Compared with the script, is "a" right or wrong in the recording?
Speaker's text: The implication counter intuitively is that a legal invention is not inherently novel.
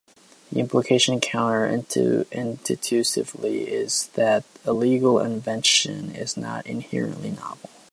right